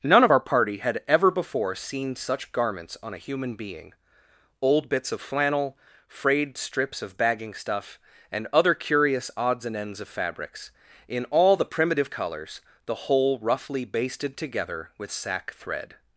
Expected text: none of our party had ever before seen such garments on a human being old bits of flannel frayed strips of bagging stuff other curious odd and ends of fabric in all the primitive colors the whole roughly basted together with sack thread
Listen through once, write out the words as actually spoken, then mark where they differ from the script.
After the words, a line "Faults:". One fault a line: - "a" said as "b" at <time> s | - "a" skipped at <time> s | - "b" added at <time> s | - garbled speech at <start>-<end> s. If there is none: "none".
none of our party had ever before seen such garments on a human being old bits of flannel frayed strips of bagging stuff and other curious odds and ends of fabrics in all the primitive colors the whole roughly basted together with sack thread
Faults:
- "and" added at 8.3 s
- "odd" said as "odds" at 9.4 s
- "fabric" said as "fabrics" at 10.1 s